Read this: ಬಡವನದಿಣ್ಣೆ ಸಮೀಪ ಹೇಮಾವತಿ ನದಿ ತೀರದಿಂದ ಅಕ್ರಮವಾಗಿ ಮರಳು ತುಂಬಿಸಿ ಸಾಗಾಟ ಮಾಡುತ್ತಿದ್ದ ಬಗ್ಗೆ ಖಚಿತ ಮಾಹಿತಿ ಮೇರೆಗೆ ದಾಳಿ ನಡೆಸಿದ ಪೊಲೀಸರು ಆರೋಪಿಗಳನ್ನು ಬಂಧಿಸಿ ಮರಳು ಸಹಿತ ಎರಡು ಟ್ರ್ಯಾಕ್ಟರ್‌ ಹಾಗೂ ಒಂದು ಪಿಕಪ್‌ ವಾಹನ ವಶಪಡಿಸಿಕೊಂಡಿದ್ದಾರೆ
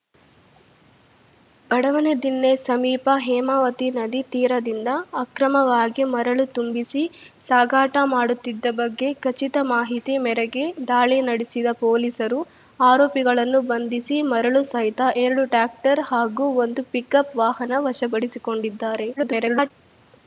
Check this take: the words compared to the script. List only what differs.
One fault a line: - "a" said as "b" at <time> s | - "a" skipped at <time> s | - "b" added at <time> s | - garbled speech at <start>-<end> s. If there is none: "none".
- garbled speech at 19.2-19.7 s